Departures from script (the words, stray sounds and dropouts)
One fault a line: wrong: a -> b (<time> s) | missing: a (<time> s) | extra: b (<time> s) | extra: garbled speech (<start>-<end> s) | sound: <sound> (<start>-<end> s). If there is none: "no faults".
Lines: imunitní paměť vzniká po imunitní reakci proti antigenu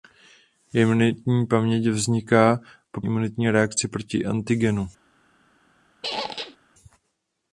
sound: squeak (6.0-6.6 s)